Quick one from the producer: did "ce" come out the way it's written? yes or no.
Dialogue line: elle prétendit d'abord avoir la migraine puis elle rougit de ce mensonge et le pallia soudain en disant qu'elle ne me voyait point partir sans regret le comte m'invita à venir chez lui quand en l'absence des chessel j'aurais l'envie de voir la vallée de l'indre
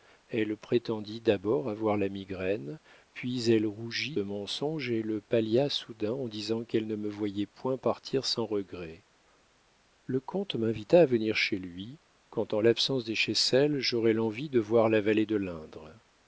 no